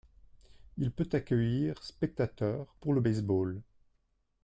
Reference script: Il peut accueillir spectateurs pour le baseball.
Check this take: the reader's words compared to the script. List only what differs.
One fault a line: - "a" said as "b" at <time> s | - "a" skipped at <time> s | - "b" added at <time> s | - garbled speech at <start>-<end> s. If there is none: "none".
none